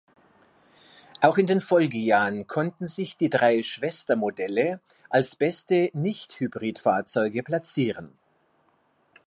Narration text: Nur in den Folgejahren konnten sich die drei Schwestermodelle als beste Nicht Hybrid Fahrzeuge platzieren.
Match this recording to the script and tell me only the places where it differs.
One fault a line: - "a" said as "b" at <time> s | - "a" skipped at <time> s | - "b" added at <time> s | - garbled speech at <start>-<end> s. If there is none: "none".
- "Nur" said as "Auch" at 1.2 s